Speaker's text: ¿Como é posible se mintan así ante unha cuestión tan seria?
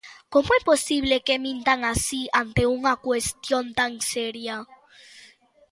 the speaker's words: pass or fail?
fail